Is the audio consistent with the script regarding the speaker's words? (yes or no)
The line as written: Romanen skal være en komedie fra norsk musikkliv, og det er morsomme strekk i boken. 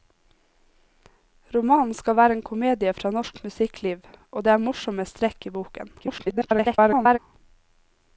no